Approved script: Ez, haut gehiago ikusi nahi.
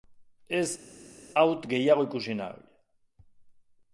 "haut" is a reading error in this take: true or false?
false